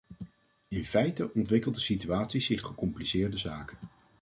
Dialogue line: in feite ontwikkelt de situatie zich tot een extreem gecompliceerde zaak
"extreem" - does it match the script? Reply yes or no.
no